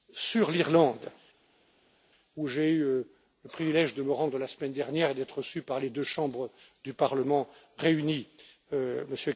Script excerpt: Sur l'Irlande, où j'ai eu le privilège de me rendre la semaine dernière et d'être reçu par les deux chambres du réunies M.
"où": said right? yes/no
yes